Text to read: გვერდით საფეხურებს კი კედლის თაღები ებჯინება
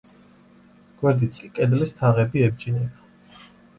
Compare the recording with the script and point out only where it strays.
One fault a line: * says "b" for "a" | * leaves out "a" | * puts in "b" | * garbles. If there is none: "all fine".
* leaves out "საფეხურებს"